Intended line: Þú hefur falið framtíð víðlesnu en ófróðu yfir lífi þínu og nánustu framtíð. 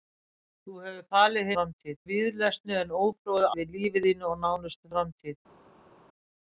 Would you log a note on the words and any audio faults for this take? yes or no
no